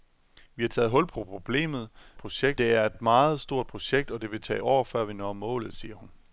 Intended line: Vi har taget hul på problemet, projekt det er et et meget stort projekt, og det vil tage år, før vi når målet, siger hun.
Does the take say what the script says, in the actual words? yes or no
yes